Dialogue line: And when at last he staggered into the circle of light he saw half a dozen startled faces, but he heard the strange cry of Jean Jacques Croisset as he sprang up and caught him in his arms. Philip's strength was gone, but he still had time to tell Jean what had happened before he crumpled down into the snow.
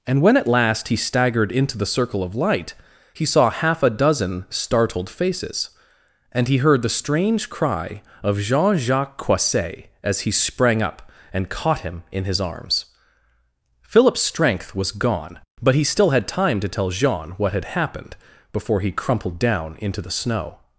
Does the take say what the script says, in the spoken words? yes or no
no